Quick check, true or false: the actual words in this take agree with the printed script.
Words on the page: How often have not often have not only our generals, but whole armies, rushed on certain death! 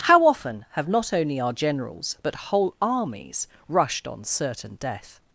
false